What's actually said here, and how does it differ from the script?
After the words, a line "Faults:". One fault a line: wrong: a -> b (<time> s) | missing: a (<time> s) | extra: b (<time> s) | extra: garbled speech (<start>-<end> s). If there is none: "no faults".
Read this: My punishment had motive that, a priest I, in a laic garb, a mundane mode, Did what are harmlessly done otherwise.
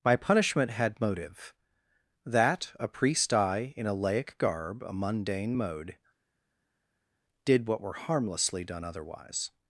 My punishment had motive that, a priest I, in a laic garb, a mundane mode, Did what were harmlessly done otherwise.
Faults:
wrong: are -> were (7.8 s)